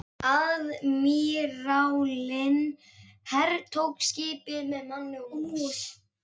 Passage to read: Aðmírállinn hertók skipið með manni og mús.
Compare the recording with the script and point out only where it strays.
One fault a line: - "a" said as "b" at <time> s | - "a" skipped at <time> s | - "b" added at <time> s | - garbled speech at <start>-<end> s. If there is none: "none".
none